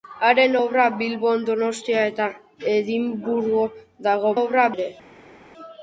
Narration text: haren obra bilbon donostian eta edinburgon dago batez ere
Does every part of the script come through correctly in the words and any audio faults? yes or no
no